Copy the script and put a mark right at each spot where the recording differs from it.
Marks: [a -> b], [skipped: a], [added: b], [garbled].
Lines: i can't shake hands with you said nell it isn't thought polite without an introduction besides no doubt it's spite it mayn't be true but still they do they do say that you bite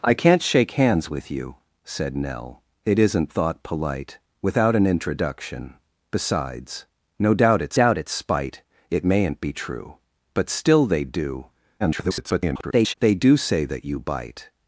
i can't shake hands with you said nell it isn't thought polite without an introduction besides no doubt it's [added: doubt it's] spite it mayn't be true but still they do [garbled] they do say that you bite